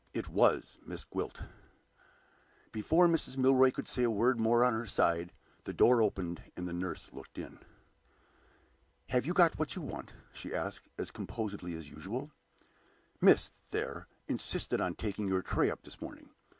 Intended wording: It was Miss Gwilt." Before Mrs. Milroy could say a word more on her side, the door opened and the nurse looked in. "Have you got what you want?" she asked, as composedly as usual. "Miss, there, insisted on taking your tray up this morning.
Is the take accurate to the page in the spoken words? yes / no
yes